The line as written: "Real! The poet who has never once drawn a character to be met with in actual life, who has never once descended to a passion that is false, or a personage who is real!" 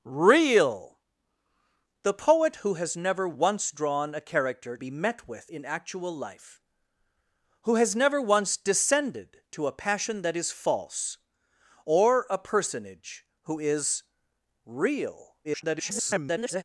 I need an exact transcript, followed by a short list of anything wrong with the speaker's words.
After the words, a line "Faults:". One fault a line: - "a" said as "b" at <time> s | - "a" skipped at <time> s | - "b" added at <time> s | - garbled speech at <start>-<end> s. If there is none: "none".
"Real! The poet who has never once drawn a character be met with in actual life, who has never once descended to a passion that is false, or a personage who is real!" [garbled]
Faults:
- "to" skipped at 4.8 s
- garbled speech at 15.4-16.6 s